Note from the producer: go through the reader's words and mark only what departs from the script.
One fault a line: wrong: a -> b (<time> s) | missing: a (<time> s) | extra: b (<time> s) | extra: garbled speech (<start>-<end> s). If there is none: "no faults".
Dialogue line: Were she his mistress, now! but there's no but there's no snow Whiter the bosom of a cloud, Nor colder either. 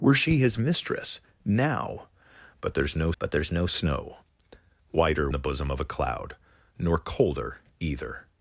no faults